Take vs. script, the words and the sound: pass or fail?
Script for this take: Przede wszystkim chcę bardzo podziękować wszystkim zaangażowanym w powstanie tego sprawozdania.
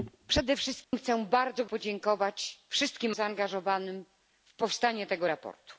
fail